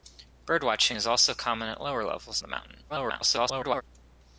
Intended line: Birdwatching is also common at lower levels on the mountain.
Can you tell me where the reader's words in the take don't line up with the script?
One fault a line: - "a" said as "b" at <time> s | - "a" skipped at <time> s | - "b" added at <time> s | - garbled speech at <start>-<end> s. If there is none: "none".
- "on" skipped at 2.4 s
- garbled speech at 2.9-3.8 s